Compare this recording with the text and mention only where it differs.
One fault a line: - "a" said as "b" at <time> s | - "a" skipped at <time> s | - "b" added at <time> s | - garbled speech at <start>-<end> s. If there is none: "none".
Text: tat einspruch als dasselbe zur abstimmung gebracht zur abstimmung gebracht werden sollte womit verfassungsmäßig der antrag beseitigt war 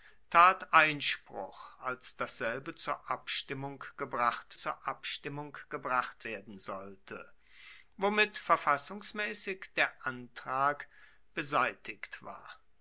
none